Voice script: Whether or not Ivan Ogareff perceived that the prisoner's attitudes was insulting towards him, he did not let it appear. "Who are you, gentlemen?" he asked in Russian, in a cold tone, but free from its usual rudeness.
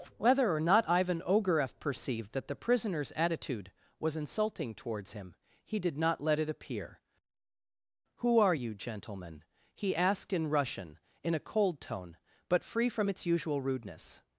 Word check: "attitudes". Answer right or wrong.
wrong